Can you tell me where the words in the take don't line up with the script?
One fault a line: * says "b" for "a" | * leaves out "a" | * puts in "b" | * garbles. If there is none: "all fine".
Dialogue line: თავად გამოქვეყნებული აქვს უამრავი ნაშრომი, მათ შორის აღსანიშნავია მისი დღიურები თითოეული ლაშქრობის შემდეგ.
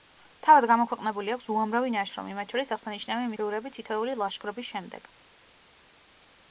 * leaves out "მისი"